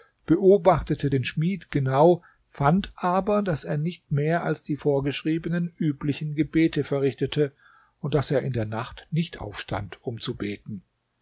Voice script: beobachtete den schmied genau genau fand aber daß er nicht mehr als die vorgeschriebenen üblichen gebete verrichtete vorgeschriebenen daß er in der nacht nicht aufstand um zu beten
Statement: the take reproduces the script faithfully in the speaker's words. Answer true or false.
false